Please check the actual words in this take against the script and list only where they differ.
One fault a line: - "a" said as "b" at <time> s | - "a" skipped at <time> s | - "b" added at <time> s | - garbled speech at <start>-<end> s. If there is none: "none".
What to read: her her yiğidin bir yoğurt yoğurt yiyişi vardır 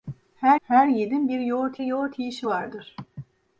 none